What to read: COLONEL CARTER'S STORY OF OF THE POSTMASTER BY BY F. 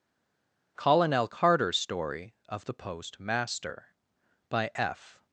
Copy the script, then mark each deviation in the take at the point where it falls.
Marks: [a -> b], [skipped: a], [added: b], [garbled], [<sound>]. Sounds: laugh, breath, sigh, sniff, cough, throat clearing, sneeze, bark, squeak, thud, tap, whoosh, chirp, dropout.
COLONEL CARTER'S STORY OF [skipped: OF] THE POSTMASTER BY [skipped: BY] F.